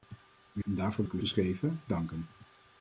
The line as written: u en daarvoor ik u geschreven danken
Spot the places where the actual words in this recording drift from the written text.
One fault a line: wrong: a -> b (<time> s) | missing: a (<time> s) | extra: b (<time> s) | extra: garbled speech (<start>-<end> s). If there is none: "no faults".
no faults